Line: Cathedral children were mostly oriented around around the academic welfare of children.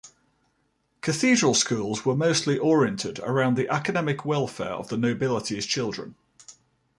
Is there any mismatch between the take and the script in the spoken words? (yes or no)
yes